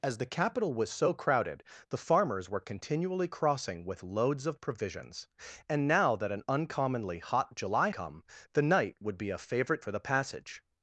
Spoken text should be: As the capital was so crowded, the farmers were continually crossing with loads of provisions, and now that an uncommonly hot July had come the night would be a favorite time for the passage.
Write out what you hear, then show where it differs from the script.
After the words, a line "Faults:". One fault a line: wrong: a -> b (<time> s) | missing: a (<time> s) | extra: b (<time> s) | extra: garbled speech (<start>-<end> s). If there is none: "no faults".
As the capital was so crowded, the farmers were continually crossing with loads of provisions, and now that an uncommonly hot July come the night would be a favorite for the passage.
Faults:
missing: had (7.9 s)
missing: time (9.8 s)